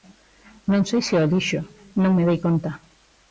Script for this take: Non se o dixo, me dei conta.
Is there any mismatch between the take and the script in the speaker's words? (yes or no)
yes